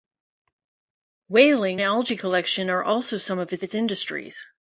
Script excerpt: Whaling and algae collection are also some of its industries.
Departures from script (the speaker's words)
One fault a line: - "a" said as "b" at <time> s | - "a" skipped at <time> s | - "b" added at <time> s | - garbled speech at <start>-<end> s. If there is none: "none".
- "and" skipped at 1.8 s
- "its" added at 3.6 s